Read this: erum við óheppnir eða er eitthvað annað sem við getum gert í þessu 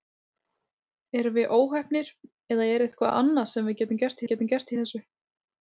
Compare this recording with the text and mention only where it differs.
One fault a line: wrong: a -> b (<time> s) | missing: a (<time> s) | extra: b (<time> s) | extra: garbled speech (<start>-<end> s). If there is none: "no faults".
extra: við getum gert (4.2 s)